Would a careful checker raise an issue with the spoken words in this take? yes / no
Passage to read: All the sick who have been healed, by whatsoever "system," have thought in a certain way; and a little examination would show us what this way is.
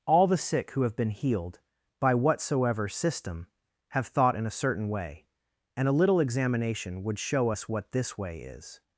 no